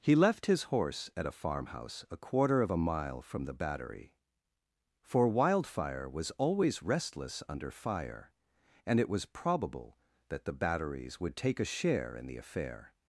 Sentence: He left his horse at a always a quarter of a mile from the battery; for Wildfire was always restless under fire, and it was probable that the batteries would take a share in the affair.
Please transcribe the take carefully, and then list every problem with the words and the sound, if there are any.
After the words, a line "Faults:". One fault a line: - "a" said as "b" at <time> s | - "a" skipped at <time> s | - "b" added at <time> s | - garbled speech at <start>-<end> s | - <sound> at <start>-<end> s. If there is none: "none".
He left his horse at a farmhouse a quarter of a mile from the battery; for Wildfire was always restless under fire, and it was probable that the batteries would take a share in the affair.
Faults:
- "always" said as "farmhouse" at 1.3 s